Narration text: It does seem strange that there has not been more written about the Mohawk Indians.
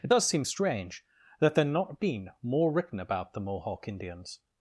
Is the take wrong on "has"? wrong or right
wrong